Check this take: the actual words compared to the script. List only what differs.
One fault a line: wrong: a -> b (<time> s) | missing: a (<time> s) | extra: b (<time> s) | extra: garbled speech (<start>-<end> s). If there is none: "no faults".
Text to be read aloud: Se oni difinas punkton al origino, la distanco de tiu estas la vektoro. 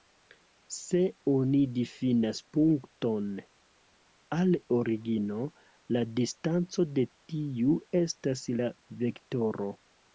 no faults